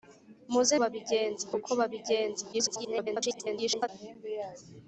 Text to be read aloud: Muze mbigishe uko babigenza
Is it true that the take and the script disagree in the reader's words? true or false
true